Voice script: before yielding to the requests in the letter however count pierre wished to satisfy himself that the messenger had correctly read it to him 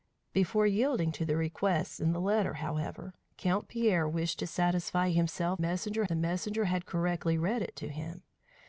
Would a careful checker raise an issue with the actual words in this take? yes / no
yes